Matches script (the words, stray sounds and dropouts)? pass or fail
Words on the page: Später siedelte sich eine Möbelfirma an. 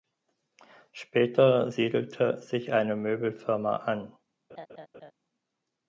fail